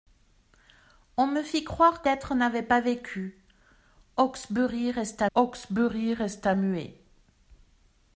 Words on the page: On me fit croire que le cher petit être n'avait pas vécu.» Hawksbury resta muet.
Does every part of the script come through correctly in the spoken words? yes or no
no